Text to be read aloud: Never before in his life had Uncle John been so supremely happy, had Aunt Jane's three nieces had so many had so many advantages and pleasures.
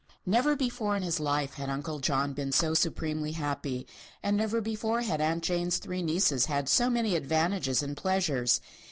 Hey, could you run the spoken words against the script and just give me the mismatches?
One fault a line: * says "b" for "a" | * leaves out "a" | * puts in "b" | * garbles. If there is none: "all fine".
* puts in "and never before"
* leaves out "had so many"